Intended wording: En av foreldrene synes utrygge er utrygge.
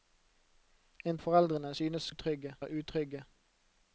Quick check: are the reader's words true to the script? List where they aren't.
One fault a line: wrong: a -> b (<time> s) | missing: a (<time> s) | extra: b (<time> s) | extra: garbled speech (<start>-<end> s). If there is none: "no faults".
no faults